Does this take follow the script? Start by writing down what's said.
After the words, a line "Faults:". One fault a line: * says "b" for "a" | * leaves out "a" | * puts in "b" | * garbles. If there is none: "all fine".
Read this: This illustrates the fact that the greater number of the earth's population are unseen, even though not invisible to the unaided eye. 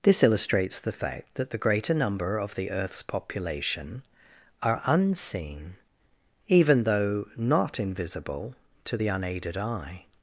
This illustrates the fact that the greater number of the earth's population are unseen, even though not invisible to the unaided eye.
Faults:
all fine